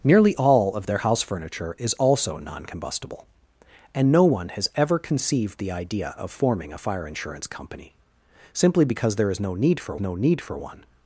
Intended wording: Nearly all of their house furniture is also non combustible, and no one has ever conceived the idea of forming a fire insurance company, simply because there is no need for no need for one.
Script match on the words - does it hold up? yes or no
yes